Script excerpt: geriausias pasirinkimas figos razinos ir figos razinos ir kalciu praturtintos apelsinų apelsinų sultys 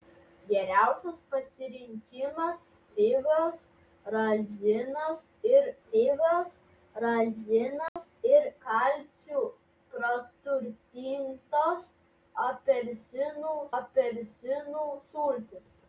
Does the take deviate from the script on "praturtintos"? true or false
false